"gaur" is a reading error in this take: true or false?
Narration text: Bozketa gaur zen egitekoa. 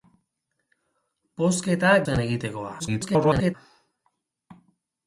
true